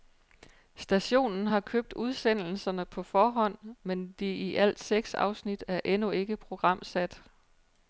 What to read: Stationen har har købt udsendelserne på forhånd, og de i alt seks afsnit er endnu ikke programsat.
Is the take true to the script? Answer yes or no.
no